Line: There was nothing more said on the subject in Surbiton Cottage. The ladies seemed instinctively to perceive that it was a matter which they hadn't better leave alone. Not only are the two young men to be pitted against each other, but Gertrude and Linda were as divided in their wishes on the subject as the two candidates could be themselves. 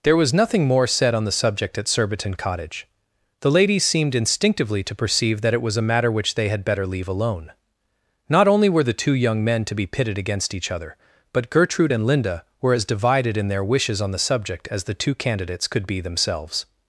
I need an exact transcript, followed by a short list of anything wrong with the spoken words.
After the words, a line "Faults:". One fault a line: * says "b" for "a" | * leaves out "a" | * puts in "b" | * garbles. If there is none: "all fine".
There was nothing more said on the subject at Surbiton Cottage. The ladies seemed instinctively to perceive that it was a matter which they had better leave alone. Not only were the two young men to be pitted against each other, but Gertrude and Linda were as divided in their wishes on the subject as the two candidates could be themselves.
Faults:
* says "at" for "in"
* says "had" for "hadn't"
* says "were" for "are"